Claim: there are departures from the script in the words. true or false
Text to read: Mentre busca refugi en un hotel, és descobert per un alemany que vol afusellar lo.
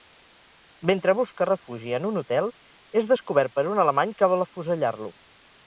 false